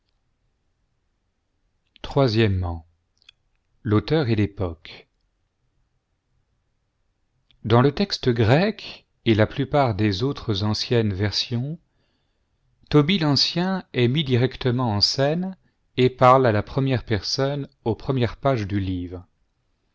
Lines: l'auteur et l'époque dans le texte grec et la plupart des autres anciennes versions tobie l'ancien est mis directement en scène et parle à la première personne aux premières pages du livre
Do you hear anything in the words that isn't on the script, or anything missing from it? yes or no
no